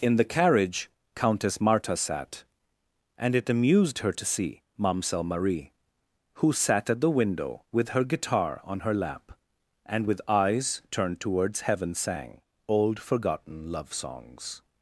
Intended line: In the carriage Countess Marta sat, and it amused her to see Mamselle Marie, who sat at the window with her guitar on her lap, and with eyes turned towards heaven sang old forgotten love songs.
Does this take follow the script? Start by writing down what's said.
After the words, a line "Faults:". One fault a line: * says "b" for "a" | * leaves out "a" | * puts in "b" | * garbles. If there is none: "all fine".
In the carriage Countess Marta sat, and it amused her to see Mamselle Marie, who sat at the window with her guitar on her lap, and with eyes turned towards heaven sang old forgotten love songs.
Faults:
all fine